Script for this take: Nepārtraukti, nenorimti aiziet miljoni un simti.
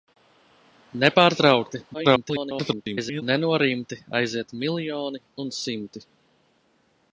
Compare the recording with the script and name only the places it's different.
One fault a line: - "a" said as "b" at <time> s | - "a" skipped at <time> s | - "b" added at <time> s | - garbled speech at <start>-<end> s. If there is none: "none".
- garbled speech at 1.9-3.2 s